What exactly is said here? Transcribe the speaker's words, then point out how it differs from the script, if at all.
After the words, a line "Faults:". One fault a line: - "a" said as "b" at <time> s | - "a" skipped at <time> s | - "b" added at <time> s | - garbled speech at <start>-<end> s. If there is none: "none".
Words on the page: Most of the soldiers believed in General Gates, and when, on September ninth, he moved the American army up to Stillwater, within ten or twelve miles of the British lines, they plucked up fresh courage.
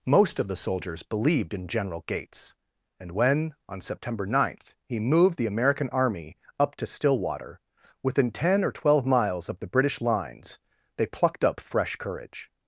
Most of the soldiers believed in General Gates, and when, on September ninth, he moved the American army up to Stillwater, within ten or twelve miles of the British lines, they plucked up fresh courage.
Faults:
none